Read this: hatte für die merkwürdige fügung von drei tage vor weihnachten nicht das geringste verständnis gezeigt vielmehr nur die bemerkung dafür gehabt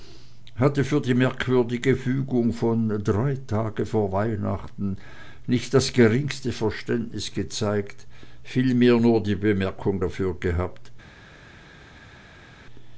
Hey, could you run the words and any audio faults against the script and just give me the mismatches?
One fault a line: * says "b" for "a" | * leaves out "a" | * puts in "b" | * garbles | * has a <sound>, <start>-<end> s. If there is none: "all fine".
all fine